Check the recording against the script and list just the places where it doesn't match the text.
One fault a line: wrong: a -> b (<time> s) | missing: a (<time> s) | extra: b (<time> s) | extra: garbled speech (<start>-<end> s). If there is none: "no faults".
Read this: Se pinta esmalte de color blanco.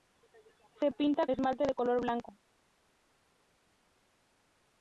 no faults